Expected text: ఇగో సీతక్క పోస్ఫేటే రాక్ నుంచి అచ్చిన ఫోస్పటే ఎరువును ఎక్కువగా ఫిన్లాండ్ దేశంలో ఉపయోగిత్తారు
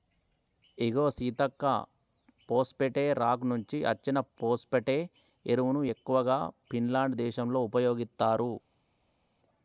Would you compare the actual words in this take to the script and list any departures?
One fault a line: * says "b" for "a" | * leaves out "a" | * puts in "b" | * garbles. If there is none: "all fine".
all fine